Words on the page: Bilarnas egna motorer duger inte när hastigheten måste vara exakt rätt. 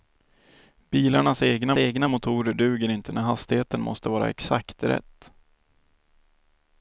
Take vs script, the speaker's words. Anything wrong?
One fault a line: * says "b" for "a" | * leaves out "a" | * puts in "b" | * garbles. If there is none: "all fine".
* puts in "egna"